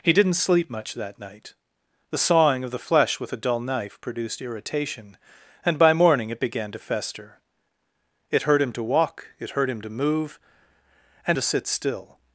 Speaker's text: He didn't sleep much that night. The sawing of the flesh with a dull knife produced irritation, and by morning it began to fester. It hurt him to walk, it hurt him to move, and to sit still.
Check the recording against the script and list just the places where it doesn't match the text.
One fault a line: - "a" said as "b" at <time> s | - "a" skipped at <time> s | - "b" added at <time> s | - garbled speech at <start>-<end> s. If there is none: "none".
none